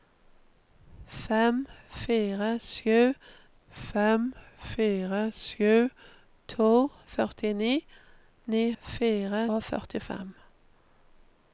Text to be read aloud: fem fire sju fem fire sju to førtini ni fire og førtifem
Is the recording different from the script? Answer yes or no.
no